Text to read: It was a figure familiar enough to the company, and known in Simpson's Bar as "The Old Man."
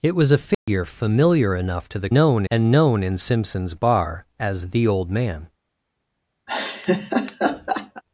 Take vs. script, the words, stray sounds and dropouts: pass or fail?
fail